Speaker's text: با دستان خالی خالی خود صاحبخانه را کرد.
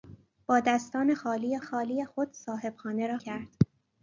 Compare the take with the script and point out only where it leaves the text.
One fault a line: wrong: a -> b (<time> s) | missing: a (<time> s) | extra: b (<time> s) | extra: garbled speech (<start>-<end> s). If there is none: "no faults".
no faults